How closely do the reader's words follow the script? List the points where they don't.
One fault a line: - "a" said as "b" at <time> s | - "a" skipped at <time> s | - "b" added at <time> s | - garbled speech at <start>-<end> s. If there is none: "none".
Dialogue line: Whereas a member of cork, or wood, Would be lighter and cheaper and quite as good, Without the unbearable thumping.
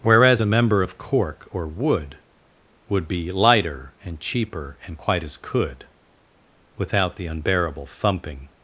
- "good" said as "could" at 5.4 s